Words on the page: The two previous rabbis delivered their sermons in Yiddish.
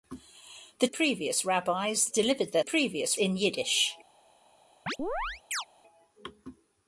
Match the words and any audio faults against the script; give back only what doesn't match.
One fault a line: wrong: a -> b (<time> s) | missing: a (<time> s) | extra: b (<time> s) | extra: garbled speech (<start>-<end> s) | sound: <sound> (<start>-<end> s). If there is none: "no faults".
missing: two (0.9 s)
wrong: sermons -> previous (2.6 s)
sound: chirp (4.9-5.7 s)